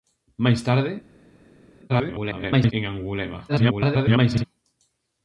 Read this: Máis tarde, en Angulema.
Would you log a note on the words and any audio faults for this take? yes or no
yes